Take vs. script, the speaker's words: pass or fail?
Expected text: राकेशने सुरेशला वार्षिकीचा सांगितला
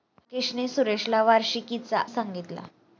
pass